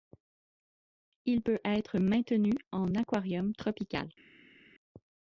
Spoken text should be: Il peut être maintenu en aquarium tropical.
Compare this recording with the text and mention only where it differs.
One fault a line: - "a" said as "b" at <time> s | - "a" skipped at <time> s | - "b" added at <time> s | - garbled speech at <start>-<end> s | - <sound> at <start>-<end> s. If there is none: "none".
none